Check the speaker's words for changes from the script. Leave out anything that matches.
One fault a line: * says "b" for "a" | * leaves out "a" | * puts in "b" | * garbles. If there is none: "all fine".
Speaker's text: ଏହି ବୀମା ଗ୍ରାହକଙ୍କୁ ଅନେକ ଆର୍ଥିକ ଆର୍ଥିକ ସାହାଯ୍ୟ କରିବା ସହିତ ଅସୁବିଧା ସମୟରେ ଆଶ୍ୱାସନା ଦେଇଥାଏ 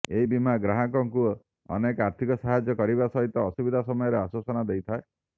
* leaves out "ଆର୍ଥିକ"